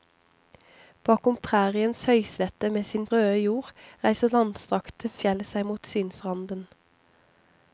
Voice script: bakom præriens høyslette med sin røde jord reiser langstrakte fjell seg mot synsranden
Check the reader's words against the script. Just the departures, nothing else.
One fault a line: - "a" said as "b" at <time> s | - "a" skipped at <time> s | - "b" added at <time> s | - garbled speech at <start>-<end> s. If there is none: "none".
none